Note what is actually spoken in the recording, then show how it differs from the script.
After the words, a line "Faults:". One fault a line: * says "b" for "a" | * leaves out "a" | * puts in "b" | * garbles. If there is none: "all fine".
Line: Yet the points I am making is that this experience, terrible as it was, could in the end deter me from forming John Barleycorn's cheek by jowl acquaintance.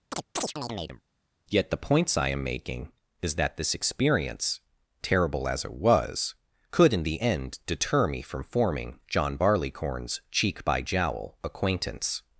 Yet the points I am making is that this experience, terrible as it was, could in the end deter me from forming John Barleycorn's cheek by jowl acquaintance.
Faults:
all fine